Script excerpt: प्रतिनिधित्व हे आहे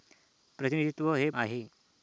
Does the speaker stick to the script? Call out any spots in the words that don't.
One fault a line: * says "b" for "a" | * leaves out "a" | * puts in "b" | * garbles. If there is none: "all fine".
all fine